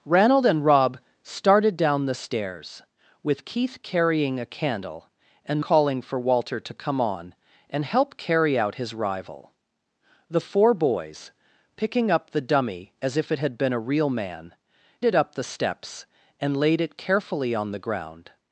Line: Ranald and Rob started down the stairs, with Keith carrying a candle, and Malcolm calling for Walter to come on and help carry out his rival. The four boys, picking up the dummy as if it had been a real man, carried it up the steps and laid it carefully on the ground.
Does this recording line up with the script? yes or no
no